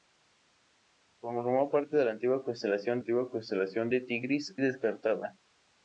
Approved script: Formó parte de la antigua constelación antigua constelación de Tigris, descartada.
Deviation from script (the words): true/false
false